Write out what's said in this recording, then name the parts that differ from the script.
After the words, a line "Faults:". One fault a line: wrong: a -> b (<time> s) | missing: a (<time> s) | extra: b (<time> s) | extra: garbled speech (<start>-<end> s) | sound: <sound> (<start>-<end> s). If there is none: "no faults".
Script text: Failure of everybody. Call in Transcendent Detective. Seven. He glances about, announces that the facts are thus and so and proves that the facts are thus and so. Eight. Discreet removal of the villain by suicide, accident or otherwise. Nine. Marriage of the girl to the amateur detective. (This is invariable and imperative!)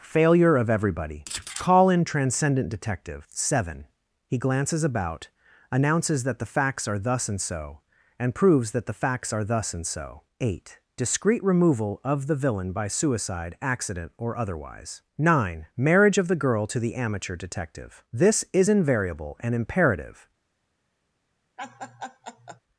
Failure of everybody. Call in Transcendent Detective. Seven. He glances about, announces that the facts are thus and so and proves that the facts are thus and so. Eight. Discreet removal of the villain by suicide, accident or otherwise. Nine. Marriage of the girl to the amateur detective. (This is invariable and imperative!)
Faults:
sound: laugh (21.6-22.6 s)